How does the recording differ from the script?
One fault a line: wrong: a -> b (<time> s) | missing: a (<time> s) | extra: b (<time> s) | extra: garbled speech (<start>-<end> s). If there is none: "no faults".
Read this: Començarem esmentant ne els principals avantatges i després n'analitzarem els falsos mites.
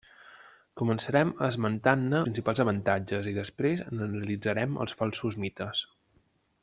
missing: els (2.2 s)